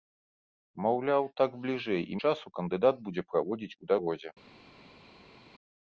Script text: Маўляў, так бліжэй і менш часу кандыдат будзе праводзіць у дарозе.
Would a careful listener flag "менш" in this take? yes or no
yes